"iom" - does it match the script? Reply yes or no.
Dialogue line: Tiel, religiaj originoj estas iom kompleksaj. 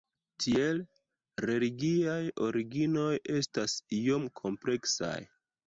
yes